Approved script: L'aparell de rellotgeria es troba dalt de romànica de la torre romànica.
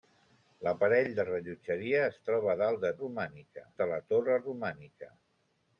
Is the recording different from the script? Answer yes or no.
no